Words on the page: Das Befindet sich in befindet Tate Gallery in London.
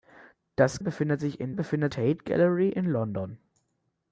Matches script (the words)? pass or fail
pass